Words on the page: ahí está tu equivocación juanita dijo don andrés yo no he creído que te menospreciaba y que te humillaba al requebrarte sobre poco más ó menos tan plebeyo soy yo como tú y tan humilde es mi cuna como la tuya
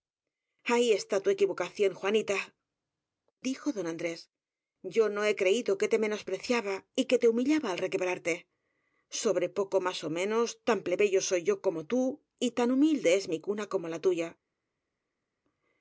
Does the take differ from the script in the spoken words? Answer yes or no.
no